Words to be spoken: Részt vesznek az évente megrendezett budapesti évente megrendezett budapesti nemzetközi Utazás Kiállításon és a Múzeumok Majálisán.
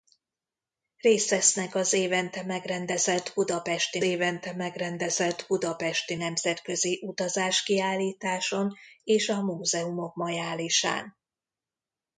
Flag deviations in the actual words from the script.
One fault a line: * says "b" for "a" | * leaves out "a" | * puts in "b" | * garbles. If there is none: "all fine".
all fine